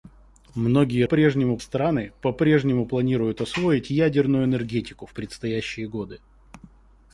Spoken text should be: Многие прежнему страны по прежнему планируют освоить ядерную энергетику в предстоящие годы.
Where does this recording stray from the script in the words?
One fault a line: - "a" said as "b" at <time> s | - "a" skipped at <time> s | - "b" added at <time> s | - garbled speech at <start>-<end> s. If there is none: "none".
none